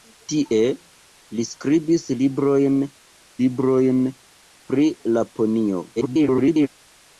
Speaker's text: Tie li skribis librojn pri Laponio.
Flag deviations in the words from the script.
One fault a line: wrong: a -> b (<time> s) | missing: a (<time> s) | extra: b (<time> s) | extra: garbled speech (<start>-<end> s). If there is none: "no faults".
extra: librojn (3.4 s)
extra: garbled speech (6.0-6.7 s)